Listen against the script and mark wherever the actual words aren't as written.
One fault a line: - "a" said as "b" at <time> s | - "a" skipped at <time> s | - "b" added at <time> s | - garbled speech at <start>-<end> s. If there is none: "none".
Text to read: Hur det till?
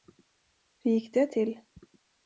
- "gick" added at 0.9 s